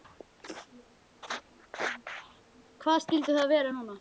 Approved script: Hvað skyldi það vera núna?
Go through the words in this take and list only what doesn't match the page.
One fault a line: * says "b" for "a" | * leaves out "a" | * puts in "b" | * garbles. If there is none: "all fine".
all fine